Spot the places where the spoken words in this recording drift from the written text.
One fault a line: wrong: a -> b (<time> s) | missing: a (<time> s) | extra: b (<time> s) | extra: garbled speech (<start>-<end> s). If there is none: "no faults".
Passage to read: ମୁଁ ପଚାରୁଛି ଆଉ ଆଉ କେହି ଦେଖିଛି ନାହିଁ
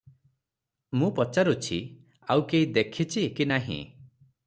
missing: ଆଉ (2.5 s)
extra: କି (3.4 s)